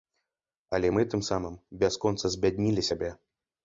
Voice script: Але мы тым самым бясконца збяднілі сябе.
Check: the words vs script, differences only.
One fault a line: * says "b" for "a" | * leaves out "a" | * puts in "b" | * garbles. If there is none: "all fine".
all fine